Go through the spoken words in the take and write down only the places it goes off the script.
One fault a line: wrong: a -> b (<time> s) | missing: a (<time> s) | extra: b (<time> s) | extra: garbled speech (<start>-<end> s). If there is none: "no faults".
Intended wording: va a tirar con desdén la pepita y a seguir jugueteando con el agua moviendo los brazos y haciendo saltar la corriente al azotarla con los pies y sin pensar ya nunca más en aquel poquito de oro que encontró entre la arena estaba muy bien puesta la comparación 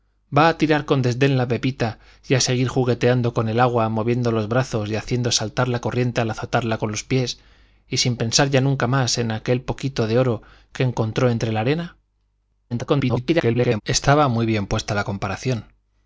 extra: garbled speech (12.7-13.8 s)